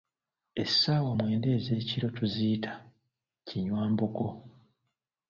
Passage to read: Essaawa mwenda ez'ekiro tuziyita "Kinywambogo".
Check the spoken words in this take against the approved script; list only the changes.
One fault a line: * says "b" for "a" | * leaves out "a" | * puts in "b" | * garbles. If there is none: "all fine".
all fine